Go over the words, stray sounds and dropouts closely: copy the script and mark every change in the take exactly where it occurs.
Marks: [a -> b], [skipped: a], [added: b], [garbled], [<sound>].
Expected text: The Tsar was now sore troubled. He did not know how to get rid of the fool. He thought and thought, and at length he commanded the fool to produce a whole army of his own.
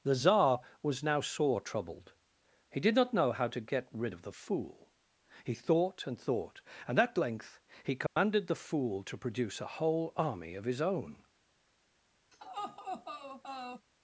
The Tsar was now sore troubled. He did not know how to get rid of the fool. He thought and thought, and at length he commanded [dropout] the fool to produce a whole army of his own. [laugh]